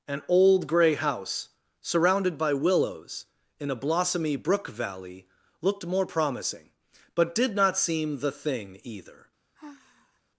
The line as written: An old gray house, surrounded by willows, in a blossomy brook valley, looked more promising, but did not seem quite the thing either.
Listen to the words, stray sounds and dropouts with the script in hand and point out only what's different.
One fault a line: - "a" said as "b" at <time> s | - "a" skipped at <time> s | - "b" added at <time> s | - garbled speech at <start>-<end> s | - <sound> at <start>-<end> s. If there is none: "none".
- "quite" skipped at 8.2 s
- sigh at 9.5-10.2 s